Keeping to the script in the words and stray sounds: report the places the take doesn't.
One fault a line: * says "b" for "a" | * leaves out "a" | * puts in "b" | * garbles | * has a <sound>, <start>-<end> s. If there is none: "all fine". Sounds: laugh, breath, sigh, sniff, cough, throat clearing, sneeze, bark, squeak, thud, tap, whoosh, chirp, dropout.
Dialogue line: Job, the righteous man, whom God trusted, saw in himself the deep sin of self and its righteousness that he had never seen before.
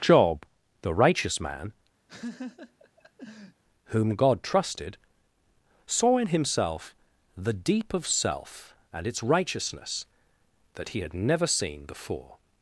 * has a laugh, 2.1-3.6 s
* leaves out "sin"